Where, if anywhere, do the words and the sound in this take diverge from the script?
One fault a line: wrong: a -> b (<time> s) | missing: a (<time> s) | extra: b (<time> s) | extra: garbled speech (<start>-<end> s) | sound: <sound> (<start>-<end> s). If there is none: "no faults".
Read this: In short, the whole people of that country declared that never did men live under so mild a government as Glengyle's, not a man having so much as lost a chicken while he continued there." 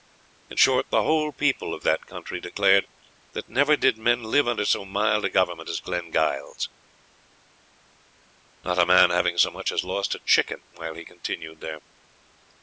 no faults